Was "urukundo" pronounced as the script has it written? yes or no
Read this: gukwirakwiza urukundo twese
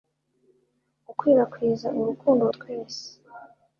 yes